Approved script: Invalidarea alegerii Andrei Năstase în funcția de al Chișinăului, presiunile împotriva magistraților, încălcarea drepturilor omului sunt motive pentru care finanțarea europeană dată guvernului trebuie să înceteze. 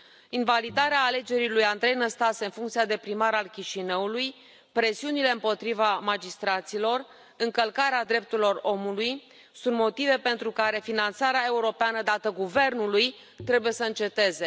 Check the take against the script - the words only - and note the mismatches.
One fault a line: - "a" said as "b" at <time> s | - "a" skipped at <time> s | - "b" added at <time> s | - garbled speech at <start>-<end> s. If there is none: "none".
- "lui" added at 1.5 s
- "primar" added at 3.0 s